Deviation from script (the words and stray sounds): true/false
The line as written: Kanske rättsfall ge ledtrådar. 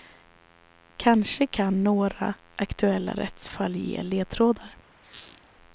true